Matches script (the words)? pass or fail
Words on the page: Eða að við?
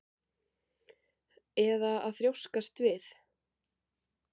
fail